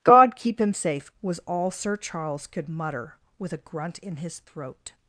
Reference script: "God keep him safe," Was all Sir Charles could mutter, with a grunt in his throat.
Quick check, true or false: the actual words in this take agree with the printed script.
true